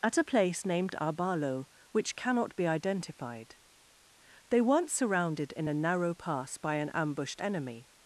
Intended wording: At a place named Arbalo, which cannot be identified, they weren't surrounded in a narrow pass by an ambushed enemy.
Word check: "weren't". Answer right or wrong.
right